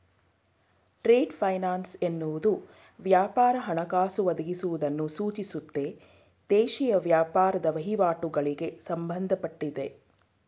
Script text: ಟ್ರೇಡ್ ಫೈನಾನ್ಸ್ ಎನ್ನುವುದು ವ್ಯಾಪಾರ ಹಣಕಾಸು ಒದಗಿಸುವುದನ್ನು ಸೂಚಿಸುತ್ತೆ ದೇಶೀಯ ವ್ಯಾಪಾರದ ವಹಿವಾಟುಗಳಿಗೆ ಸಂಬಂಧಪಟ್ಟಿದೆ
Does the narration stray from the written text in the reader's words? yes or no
no